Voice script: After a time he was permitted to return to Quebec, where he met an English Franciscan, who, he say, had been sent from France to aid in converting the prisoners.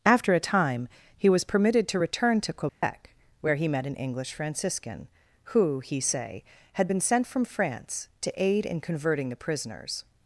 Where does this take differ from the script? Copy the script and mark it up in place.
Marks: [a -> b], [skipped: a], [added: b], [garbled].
After a time he was permitted to return to Quebec, where he met an English Franciscan, who, he say, had been sent from France to aid in converting the prisoners.